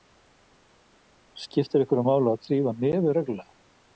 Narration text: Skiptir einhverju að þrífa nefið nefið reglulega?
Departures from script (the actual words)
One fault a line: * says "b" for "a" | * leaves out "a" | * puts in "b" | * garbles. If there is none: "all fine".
* puts in "máli"
* leaves out "nefið"